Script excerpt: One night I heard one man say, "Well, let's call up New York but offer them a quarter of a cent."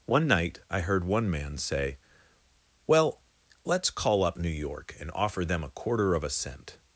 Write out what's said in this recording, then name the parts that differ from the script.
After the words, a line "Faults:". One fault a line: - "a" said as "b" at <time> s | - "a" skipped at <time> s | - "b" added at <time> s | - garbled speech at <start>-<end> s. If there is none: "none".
One night I heard one man say, "Well, let's call up New York and offer them a quarter of a cent."
Faults:
- "but" said as "and" at 5.0 s